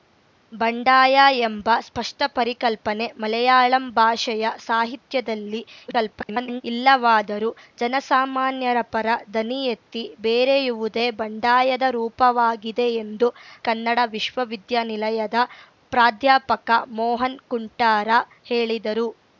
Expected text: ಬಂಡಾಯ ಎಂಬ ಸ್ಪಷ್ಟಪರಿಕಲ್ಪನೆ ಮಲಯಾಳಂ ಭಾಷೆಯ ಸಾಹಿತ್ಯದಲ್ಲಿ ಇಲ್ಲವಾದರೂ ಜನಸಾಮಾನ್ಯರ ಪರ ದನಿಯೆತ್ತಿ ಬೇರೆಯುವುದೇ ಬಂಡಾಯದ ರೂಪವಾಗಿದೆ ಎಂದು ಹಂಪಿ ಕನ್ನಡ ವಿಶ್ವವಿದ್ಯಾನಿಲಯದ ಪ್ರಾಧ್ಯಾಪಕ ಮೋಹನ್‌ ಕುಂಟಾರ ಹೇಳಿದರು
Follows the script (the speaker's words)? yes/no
no